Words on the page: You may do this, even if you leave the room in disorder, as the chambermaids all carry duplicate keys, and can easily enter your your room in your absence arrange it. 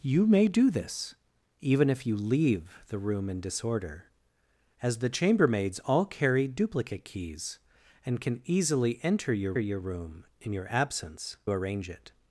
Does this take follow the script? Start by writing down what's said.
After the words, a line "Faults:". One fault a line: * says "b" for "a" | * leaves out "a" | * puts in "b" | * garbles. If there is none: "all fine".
You may do this, even if you leave the room in disorder, as the chambermaids all carry duplicate keys, and can easily enter your your room in your absence arrange it.
Faults:
all fine